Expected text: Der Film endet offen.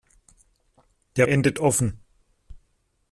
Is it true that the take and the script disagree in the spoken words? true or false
true